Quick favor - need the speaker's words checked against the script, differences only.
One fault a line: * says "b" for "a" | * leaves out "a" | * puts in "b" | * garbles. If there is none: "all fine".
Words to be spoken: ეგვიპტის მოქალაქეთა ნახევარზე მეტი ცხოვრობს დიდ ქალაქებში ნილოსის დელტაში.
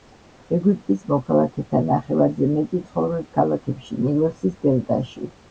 * leaves out "დიდ"